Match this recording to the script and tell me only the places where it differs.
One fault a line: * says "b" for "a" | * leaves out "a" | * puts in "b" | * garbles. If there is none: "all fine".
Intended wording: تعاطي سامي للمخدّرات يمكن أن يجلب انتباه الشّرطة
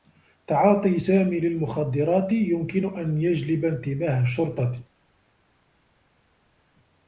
all fine